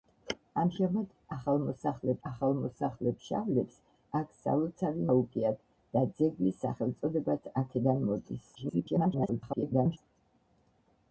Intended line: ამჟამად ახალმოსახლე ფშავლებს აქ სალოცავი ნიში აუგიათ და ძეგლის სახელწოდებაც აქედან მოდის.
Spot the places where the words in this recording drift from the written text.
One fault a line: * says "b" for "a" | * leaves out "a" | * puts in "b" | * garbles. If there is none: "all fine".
* puts in "ახალმოსახლე"
* leaves out "ნიში"
* garbles